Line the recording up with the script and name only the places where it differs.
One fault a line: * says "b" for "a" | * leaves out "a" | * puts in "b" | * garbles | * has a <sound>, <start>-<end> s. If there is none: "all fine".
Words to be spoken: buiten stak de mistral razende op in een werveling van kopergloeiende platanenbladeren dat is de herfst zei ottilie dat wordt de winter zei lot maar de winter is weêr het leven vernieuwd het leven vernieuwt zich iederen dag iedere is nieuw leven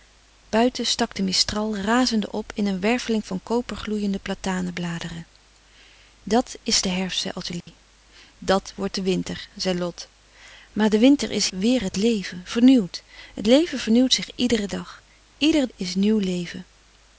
* has a dropout, 7.6-7.7 s